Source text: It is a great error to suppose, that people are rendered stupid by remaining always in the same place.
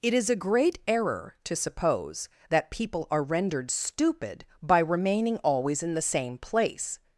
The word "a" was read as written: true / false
true